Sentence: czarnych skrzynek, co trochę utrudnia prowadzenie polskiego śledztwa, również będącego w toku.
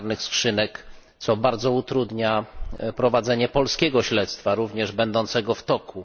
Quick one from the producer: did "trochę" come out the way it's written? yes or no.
no